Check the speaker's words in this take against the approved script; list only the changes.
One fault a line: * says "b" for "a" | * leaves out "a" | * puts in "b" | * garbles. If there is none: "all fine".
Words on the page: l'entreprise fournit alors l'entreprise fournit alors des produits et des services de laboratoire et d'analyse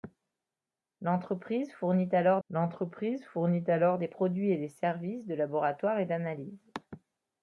all fine